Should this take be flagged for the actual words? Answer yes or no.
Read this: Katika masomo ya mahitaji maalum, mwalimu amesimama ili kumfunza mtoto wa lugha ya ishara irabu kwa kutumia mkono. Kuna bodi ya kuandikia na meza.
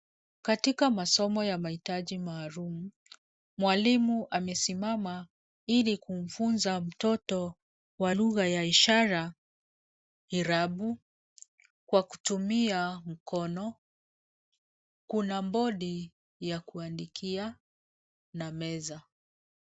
no